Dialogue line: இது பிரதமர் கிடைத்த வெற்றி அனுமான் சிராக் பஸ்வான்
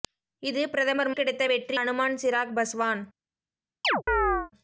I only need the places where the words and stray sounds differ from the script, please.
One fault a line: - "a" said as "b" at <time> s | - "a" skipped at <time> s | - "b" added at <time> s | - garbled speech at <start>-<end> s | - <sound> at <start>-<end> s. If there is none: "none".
- chirp at 3.8-4.5 s